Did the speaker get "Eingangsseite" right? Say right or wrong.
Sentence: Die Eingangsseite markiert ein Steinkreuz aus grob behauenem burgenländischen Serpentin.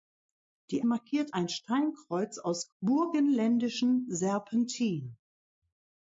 wrong